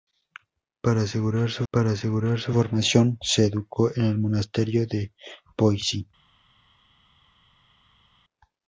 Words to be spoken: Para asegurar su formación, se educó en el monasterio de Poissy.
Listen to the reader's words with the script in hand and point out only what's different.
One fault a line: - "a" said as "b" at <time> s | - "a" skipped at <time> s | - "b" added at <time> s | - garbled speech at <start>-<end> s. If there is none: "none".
- "para asegurar su" added at 1.7 s